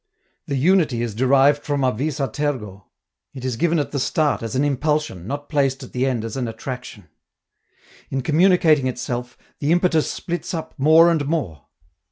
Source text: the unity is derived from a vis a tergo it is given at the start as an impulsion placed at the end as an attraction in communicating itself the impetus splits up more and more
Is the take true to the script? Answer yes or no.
no